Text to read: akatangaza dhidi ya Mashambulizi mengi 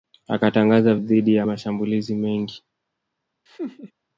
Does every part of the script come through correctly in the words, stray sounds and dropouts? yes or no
no